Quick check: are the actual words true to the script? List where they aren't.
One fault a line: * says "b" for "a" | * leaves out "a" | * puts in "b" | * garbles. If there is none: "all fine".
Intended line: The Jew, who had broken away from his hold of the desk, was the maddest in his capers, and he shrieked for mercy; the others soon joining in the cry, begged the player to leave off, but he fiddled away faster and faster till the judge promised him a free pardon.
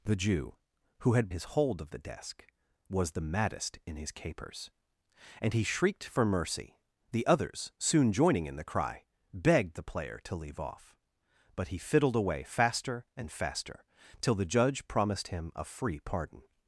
* leaves out "broken away from"